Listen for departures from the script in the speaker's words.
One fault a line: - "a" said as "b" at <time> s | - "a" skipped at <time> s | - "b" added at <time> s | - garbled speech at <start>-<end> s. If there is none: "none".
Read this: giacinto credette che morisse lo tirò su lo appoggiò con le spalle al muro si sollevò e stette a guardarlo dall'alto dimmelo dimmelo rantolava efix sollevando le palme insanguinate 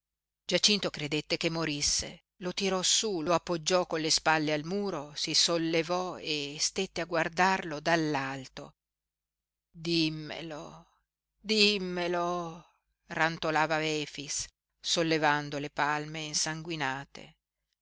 none